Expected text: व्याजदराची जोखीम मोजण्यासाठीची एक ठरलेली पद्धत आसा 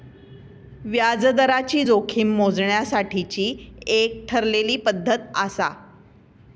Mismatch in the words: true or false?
false